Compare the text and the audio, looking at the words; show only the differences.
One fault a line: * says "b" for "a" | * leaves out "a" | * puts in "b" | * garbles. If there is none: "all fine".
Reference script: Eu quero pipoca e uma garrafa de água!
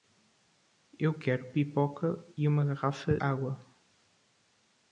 * leaves out "de"